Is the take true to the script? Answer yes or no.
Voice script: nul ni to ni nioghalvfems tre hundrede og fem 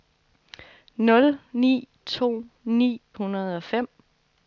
no